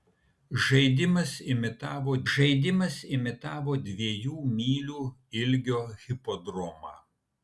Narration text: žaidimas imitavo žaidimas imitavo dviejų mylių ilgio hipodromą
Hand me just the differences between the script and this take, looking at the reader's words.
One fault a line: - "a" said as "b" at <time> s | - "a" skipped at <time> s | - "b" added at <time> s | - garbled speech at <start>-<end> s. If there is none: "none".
none